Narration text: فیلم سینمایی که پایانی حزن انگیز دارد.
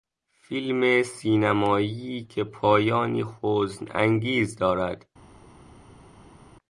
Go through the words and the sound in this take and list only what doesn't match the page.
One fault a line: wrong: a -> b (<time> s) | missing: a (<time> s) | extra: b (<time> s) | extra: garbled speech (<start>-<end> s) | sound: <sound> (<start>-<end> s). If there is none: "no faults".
no faults